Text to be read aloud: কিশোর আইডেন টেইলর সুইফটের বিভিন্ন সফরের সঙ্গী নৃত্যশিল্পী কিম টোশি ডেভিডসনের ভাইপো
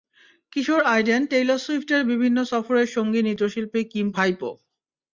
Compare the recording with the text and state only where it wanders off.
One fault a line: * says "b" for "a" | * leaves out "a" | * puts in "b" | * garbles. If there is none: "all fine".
* leaves out "টোশি ডেভিডসনের"